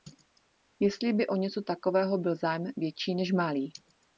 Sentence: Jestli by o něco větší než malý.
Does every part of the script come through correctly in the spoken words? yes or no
no